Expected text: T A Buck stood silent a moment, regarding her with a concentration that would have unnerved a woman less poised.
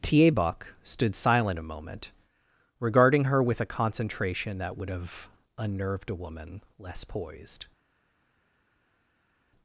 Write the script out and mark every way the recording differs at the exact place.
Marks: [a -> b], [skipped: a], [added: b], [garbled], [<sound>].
T A Buck stood silent a moment, regarding her with a concentration that would have unnerved a woman less poised.